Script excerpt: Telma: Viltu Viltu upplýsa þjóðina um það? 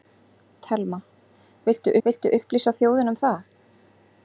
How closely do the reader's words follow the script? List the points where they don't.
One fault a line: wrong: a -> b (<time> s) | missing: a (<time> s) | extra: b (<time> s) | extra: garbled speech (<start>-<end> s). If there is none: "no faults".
no faults